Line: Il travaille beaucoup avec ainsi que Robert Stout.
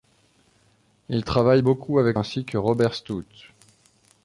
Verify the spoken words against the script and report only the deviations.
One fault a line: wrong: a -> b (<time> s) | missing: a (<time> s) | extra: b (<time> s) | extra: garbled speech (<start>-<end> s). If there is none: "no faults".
no faults